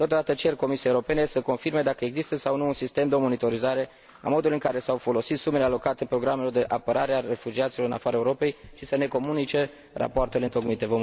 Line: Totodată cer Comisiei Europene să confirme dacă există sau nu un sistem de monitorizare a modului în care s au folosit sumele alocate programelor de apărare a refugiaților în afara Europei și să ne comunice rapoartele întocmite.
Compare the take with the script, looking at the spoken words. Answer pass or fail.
pass